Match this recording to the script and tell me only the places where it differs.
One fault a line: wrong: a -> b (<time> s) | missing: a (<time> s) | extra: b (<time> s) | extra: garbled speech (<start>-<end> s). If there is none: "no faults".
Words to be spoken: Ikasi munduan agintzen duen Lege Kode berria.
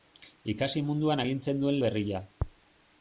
missing: Lege Kode (1.8 s)